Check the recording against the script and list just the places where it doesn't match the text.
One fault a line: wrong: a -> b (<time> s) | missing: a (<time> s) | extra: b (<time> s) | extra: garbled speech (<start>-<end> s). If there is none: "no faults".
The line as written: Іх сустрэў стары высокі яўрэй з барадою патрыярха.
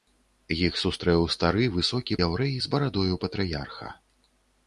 no faults